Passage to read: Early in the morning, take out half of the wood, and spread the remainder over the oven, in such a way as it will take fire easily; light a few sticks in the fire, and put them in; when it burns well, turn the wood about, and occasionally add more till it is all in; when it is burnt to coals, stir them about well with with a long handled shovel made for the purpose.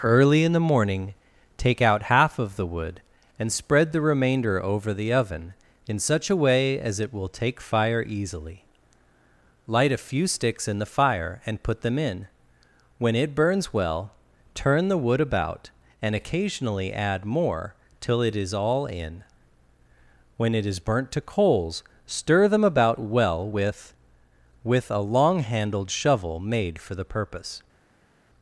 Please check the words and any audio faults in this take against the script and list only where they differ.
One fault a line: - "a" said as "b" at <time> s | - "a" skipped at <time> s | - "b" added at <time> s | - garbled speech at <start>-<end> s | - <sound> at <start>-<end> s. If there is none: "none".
none